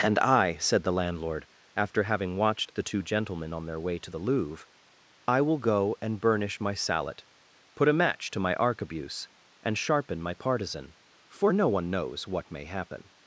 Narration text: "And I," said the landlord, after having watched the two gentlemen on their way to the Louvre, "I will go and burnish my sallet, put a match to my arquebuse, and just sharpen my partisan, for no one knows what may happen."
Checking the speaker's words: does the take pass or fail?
fail